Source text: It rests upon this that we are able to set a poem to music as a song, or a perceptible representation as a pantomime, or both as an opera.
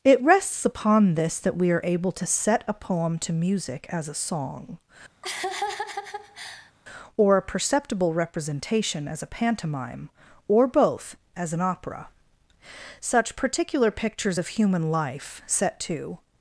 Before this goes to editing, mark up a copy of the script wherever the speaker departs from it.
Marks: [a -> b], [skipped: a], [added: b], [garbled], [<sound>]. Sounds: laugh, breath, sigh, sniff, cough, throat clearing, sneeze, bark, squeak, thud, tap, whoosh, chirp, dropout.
It rests upon this that we are able to set a poem to music as a song, [laugh] or a perceptible representation as a pantomime, or both as an opera. [added: Such particular pictures of human life set to]